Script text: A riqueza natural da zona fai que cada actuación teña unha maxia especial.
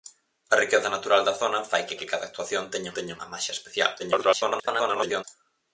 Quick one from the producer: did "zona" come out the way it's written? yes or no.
yes